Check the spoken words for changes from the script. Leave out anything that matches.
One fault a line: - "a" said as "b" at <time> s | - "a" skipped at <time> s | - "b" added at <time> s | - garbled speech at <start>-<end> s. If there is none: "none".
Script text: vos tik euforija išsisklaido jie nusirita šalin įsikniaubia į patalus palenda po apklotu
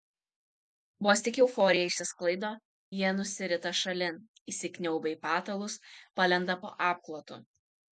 none